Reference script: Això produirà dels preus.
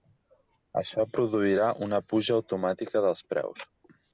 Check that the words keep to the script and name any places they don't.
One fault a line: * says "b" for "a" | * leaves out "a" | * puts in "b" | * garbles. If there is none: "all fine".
* puts in "una puja automàtica"